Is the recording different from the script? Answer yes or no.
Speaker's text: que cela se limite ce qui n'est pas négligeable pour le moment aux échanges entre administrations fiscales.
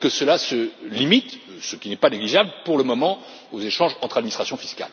no